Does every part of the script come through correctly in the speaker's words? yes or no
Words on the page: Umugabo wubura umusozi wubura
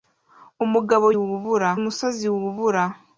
yes